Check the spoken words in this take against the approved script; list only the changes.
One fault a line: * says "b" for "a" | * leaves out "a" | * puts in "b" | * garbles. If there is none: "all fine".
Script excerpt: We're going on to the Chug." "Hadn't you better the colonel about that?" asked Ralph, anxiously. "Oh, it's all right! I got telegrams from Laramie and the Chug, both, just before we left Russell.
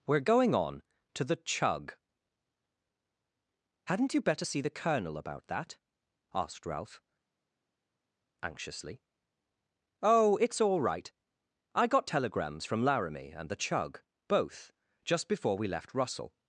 * puts in "see"